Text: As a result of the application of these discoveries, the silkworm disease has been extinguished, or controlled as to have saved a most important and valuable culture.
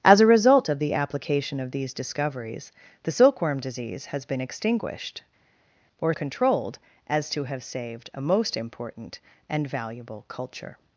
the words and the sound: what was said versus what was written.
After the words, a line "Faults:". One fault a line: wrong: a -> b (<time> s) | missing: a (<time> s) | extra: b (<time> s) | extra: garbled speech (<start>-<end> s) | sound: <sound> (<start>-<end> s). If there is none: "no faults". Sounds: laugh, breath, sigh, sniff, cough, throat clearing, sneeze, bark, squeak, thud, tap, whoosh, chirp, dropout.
As a result of the application of these discoveries, the silkworm disease has been extinguished, or controlled as to have saved a most important and valuable culture.
Faults:
no faults